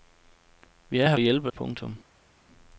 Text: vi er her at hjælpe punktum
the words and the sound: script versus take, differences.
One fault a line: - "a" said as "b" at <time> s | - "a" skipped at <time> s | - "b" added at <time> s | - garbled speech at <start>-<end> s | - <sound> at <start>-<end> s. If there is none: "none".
none